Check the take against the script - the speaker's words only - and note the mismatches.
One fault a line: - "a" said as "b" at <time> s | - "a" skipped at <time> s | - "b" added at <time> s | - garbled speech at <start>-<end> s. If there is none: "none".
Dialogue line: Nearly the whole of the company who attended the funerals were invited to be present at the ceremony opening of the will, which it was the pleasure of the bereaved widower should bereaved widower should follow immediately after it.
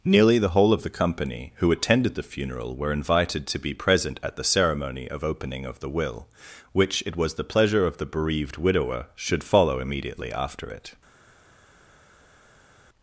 - "funerals" said as "funeral" at 2.2 s
- "of" added at 5.1 s
- "bereaved widower should" skipped at 9.4 s